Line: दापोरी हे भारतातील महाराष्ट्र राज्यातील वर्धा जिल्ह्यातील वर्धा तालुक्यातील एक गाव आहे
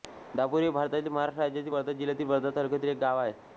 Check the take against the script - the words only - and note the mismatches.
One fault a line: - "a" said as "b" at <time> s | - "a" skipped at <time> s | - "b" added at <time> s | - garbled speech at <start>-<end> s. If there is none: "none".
none